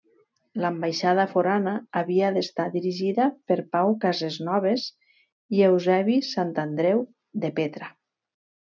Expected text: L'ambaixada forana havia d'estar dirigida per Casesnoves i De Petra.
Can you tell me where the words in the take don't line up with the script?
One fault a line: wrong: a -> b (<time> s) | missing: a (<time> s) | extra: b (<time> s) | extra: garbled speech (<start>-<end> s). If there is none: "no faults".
extra: Pau (3.8 s)
extra: Eusebi Santandreu (5.7 s)